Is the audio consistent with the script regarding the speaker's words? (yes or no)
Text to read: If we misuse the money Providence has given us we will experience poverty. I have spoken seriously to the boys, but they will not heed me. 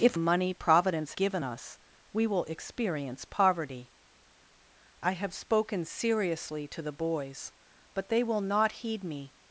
no